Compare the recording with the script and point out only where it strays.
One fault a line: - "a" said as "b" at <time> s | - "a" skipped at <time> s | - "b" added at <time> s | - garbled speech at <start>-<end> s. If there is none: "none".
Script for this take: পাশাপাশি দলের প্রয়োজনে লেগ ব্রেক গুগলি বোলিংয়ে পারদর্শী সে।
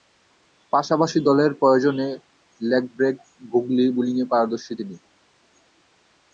- "সে" said as "তিনি" at 4.8 s